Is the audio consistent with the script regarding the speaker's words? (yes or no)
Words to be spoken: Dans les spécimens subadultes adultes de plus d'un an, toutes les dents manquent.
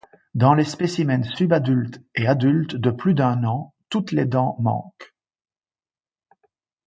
no